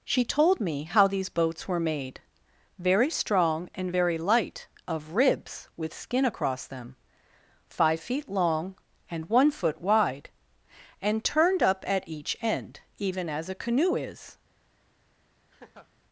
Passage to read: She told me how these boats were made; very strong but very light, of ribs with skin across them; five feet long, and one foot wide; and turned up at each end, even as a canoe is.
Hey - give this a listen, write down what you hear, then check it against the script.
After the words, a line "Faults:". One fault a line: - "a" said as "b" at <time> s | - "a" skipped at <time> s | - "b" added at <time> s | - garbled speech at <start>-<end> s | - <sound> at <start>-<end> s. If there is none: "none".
She told me how these boats were made; very strong and very light, of ribs with skin across them; five feet long, and one foot wide; and turned up at each end, even as a canoe is.
Faults:
- "but" said as "and" at 3.8 s
- laugh at 15.5-15.9 s